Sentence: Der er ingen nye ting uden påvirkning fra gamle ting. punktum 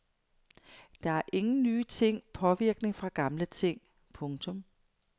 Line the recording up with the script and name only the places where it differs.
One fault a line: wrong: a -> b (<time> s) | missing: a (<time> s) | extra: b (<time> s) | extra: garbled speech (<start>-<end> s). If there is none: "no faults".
missing: uden (2.2 s)